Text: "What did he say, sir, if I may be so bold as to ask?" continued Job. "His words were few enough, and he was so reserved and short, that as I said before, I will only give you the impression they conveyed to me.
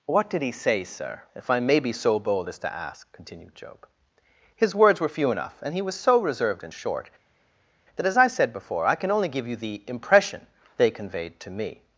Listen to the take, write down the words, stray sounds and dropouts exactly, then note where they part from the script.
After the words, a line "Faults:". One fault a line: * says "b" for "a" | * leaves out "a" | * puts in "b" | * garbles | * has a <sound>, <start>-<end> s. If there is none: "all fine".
"What did he say, sir, if I may be so bold as to ask?" continued Job. "His words were few enough, and he was so reserved and short, that as I said before, I can only give you the impression they conveyed to me.
Faults:
* says "can" for "will"